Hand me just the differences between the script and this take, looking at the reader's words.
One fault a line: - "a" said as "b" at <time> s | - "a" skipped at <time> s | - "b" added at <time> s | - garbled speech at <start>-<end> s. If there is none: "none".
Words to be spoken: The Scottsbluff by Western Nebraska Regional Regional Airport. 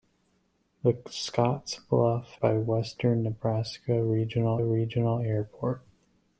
none